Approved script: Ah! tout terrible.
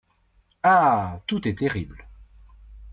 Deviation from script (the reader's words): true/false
true